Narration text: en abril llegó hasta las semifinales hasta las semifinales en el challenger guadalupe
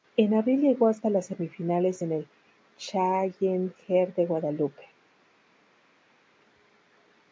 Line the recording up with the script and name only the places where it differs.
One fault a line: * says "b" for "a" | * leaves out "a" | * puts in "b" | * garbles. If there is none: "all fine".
* leaves out "hasta las semifinales"
* puts in "de"